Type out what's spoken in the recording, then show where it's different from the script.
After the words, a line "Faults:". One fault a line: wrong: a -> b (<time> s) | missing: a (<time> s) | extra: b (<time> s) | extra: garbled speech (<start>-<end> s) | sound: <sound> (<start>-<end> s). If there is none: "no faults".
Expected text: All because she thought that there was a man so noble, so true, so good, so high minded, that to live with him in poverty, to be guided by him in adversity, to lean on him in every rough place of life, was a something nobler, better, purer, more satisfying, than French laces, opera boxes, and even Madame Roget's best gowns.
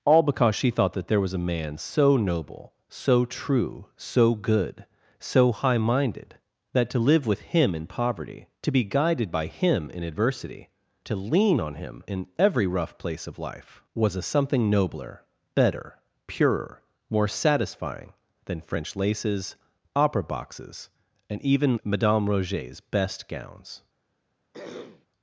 All because she thought that there was a man so noble, so true, so good, so high minded, that to live with him in poverty, to be guided by him in adversity, to lean on him in every rough place of life, was a something nobler, better, purer, more satisfying, than French laces, opera boxes, and even Madame Roget's best gowns.
Faults:
sound: throat clearing (24.5-25.1 s)